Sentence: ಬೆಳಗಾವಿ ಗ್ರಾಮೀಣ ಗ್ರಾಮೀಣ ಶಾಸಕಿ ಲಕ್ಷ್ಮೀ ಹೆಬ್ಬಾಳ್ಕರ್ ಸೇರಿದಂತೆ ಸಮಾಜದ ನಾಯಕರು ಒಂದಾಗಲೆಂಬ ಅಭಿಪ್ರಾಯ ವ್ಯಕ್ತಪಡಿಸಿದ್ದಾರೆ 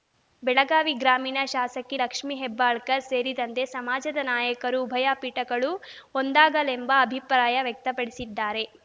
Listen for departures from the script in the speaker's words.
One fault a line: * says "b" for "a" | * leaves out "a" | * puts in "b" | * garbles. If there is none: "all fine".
* leaves out "ಗ್ರಾಮೀಣ"
* puts in "ಉಭಯ ಪೀಠಗಳು"